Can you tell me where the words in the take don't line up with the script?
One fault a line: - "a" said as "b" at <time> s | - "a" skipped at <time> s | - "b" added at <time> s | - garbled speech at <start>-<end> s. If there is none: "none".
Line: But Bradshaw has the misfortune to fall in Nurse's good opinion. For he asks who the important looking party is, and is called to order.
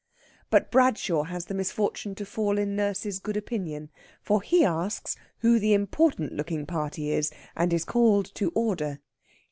none